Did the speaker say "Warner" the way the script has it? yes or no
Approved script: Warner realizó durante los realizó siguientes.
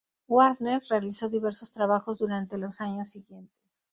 yes